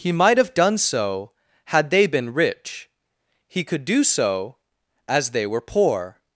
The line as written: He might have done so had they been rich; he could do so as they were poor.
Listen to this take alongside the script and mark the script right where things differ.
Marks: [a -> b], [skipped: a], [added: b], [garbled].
He might have done so had they been rich; he could do so as they were poor.